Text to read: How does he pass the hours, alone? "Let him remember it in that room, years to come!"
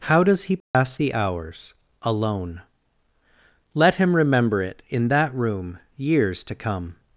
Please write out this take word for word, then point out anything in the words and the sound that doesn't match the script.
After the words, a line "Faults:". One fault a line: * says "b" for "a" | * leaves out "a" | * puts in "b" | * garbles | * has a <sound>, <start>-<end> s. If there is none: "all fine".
How does he pass the hours, alone? "Let him remember it in that room, years to come!"
Faults:
* has a dropout, 0.6-0.7 s